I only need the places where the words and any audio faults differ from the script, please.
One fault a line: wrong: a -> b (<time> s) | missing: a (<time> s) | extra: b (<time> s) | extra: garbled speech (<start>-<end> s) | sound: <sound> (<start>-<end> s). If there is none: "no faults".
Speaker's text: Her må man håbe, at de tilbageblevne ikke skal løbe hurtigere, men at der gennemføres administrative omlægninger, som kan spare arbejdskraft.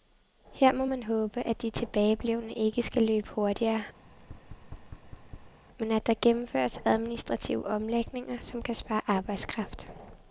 sound: thud (4.0-5.6 s)